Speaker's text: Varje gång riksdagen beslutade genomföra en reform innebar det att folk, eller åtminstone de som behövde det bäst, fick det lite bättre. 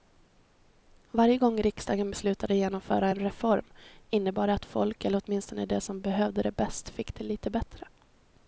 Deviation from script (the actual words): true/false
false